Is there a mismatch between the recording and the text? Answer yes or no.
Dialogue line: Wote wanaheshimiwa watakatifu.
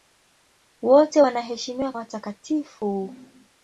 no